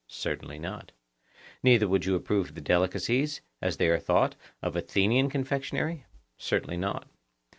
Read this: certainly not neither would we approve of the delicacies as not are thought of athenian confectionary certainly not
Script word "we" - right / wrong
wrong